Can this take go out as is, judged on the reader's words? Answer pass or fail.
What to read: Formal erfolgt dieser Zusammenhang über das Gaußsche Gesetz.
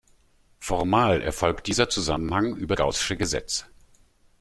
fail